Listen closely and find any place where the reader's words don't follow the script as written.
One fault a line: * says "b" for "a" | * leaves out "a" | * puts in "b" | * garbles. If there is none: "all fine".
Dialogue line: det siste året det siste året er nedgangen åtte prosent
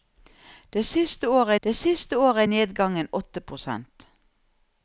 all fine